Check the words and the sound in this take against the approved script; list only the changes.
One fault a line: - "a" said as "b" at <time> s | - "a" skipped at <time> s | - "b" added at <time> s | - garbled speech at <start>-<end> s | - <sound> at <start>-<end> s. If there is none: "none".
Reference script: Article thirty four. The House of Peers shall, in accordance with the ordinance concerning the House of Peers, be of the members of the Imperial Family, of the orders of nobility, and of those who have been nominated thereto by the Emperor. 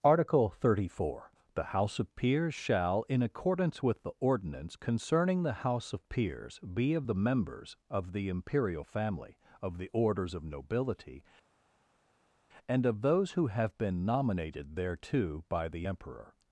none